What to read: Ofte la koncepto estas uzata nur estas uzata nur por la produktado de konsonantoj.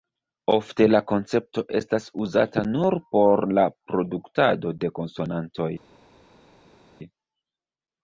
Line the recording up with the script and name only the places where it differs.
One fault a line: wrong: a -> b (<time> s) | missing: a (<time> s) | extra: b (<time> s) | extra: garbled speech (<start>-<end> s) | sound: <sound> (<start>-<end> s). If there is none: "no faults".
missing: estas uzata nur (3.0 s)